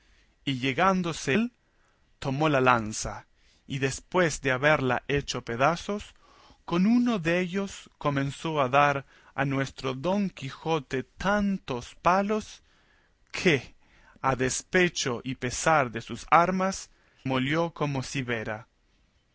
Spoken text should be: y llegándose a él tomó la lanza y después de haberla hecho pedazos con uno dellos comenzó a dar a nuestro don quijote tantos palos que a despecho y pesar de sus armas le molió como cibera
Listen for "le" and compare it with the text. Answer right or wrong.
wrong